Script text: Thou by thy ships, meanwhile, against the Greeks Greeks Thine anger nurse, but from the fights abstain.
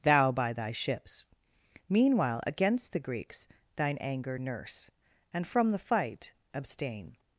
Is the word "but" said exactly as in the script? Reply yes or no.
no